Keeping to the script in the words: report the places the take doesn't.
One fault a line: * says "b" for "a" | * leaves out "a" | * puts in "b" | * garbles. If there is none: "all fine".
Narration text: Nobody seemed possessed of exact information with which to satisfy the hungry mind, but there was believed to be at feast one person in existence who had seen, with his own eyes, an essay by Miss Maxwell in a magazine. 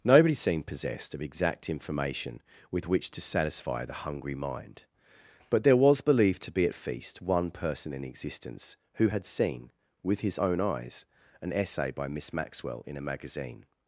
all fine